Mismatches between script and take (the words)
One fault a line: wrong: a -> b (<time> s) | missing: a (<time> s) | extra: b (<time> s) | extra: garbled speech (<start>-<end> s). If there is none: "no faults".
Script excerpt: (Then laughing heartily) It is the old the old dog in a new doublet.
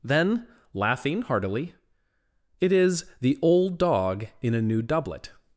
missing: the old (3.8 s)